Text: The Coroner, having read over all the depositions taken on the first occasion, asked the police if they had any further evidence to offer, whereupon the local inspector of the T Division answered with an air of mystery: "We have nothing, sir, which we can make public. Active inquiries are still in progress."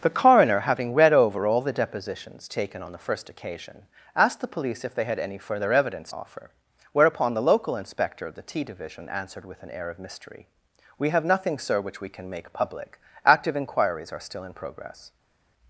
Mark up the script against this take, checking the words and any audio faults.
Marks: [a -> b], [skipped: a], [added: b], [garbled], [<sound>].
The Coroner, having read over all the depositions taken on the first occasion, asked the police if they had any further evidence [skipped: to] offer, whereupon the local inspector of the T Division answered with an air of mystery: "We have nothing, sir, which we can make public. Active inquiries are still in progress."